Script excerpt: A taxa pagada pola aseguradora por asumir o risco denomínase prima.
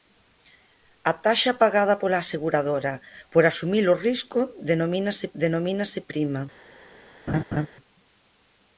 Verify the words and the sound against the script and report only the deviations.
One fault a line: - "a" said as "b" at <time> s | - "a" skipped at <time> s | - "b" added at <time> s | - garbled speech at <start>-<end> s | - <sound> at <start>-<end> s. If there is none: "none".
- "denomínase" added at 5.4 s
- laugh at 7.3-7.7 s